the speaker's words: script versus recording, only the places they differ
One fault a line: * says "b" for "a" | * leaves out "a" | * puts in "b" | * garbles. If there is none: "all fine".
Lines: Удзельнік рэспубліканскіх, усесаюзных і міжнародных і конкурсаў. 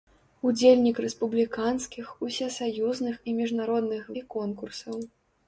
all fine